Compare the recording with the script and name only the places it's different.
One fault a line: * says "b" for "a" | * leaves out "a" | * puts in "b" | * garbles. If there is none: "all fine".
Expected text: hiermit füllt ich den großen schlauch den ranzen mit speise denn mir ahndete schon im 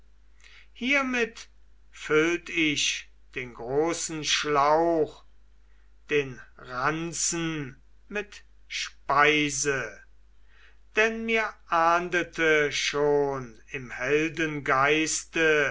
all fine